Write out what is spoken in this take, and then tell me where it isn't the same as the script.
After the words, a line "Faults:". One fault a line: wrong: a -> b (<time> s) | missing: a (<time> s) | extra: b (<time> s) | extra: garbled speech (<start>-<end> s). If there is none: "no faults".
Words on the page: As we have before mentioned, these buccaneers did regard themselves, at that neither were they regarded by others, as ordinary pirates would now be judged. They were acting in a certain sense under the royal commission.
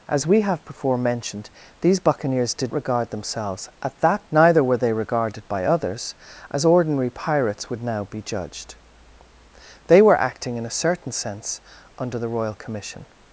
As we have before mentioned, these buccaneers did regard themselves, at that neither were they regarded by others, as ordinary pirates would now be judged. They were acting in a certain sense under the royal commission.
Faults:
no faults